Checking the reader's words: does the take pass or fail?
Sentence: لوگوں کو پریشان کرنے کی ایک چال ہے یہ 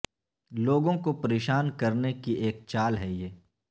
pass